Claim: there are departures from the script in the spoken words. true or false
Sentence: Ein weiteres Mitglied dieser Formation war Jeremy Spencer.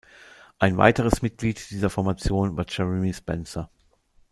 false